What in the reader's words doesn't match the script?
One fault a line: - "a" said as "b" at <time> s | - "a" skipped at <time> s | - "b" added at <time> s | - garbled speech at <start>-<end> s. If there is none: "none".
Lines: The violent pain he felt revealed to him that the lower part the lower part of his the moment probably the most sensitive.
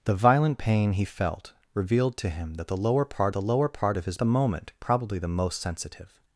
none